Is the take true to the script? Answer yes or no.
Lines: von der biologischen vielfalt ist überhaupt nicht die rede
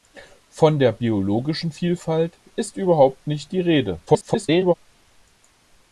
no